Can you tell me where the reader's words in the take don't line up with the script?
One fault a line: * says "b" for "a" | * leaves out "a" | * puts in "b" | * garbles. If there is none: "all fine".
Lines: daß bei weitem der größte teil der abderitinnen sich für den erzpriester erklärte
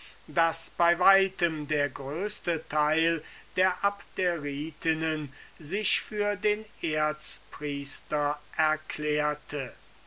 all fine